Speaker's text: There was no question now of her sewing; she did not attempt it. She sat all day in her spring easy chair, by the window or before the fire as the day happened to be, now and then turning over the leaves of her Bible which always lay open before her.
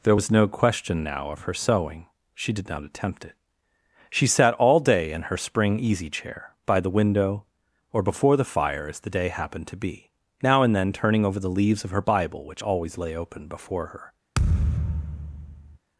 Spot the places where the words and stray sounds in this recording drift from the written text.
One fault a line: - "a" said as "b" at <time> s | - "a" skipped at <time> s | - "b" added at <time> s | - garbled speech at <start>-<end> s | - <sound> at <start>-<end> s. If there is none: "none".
- thud at 14.3-15.8 s